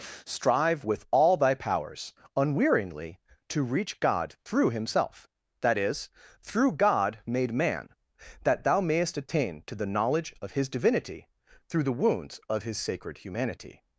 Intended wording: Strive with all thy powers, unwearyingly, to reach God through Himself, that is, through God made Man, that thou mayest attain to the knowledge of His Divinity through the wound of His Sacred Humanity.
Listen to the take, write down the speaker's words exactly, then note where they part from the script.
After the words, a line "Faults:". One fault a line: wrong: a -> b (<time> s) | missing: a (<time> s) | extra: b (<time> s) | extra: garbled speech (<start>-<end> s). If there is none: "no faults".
Strive with all thy powers, unwearyingly, to reach God through Himself, that is, through God made Man, that thou mayest attain to the knowledge of His Divinity through the wounds of His Sacred Humanity.
Faults:
wrong: wound -> wounds (11.9 s)